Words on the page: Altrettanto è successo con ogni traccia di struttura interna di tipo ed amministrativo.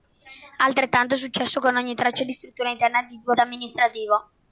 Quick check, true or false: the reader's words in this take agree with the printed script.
true